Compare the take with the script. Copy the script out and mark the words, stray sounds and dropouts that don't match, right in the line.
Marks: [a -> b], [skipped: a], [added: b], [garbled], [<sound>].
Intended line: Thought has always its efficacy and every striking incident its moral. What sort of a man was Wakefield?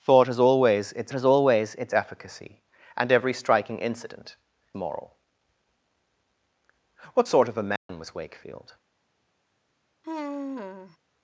Thought has always its [added: has always its] efficacy and every striking incident [skipped: its] moral. What sort of a man [dropout] was Wakefield? [sigh]